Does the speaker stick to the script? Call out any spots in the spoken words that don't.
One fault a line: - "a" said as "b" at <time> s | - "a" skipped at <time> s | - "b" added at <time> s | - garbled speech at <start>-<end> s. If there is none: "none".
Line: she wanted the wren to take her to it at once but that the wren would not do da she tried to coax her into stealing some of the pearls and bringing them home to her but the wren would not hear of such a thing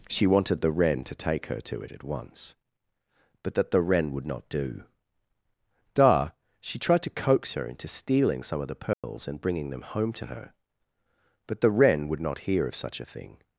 none